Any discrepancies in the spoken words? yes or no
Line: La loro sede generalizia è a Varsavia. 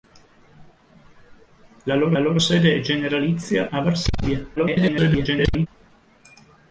yes